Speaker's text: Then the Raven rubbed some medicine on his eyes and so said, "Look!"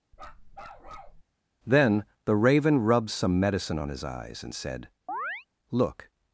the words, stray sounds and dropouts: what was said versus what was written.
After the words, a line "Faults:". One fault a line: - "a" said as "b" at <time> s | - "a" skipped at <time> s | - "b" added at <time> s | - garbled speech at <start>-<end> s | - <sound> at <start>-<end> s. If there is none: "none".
Then the Raven rubbed some medicine on his eyes and said, "Look!"
Faults:
- bark at 0.1-1.2 s
- "so" skipped at 4.5 s
- chirp at 5.1-5.5 s